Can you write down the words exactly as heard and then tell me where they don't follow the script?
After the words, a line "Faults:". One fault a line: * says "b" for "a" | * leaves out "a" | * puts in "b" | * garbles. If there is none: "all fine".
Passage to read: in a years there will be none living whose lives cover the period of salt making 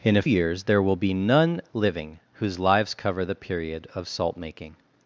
in a years there will be none living whose lives cover the period of salt making
Faults:
all fine